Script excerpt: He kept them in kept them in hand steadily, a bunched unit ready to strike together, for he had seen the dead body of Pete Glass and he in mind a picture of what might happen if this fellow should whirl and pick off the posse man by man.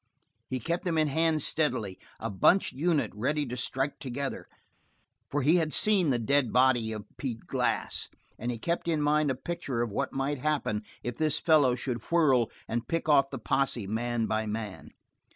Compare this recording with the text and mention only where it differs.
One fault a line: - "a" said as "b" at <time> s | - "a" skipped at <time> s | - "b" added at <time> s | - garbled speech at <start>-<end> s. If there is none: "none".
- "kept them in" skipped at 1.1 s
- "kept" added at 8.6 s